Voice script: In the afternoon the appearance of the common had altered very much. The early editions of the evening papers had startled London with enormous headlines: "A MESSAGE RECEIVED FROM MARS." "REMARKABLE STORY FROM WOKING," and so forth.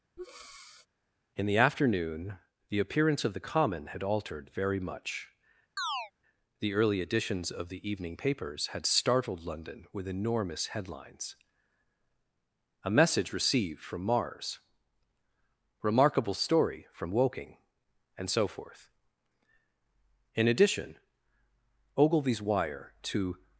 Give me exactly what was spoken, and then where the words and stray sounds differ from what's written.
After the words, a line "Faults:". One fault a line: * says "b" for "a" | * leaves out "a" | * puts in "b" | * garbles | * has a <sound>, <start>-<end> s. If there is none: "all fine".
In the afternoon the appearance of the common had altered very much. The early editions of the evening papers had startled London with enormous headlines: "A MESSAGE RECEIVED FROM MARS." "REMARKABLE STORY FROM WOKING," and so forth. In addition, Ogilvy's wire to
Faults:
* has a breath, 0.2-0.9 s
* has a chirp, 5.8-6.1 s
* puts in "In addition Ogilvy's wire to"